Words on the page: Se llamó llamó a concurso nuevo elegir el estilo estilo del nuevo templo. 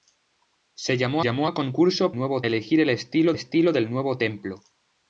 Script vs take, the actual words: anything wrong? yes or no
no